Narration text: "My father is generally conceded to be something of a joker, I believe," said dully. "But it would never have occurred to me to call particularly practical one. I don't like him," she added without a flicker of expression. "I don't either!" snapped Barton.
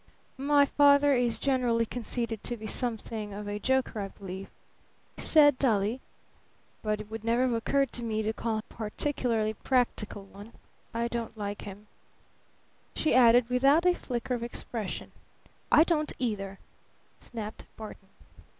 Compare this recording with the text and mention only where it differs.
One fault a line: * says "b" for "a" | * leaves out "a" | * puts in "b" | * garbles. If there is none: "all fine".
all fine